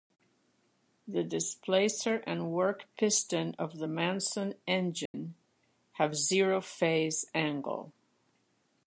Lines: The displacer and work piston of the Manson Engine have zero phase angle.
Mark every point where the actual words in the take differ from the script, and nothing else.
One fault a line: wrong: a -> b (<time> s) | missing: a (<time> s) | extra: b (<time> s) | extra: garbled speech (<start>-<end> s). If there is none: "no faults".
no faults